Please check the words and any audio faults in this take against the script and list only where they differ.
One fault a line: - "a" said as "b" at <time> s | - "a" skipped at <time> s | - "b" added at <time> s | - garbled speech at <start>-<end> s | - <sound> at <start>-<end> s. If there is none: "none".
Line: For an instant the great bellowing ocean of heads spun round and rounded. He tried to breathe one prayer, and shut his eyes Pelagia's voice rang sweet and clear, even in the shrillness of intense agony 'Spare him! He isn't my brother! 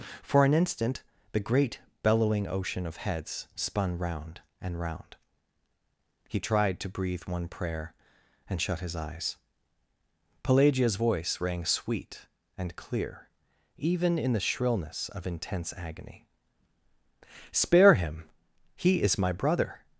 - "rounded" said as "round" at 4.8 s
- "isn't" said as "is" at 19.0 s